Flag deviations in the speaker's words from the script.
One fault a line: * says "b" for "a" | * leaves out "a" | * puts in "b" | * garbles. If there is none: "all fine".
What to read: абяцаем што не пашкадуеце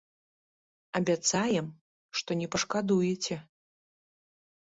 all fine